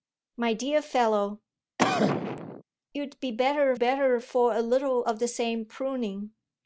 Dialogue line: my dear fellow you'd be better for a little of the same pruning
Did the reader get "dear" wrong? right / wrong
right